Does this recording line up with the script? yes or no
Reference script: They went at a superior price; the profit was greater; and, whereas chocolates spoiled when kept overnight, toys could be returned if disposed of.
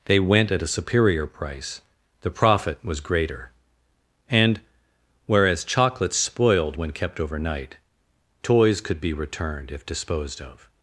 yes